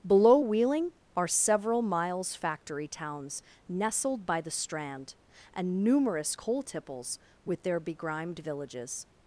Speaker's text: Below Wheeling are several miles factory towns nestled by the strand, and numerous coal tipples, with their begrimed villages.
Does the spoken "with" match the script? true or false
true